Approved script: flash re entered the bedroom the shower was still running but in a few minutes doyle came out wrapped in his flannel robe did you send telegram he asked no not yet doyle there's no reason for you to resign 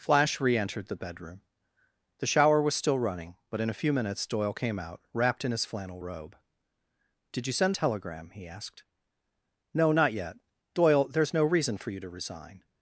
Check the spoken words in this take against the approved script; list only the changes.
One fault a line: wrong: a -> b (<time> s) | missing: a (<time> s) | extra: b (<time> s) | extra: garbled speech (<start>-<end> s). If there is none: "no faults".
no faults